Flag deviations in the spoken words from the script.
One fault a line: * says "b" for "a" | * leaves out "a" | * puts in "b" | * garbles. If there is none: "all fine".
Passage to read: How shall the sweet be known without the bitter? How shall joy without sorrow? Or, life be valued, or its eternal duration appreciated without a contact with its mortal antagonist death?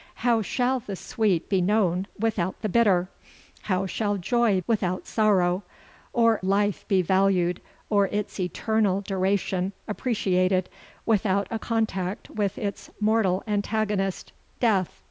all fine